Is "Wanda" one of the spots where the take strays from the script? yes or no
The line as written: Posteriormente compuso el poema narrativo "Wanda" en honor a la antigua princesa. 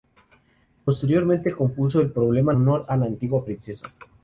yes